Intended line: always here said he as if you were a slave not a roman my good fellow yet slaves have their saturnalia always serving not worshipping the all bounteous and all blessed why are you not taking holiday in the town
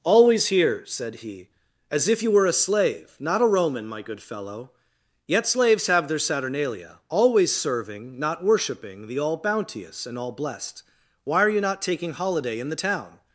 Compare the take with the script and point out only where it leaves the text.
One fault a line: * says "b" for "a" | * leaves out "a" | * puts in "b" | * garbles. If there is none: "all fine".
all fine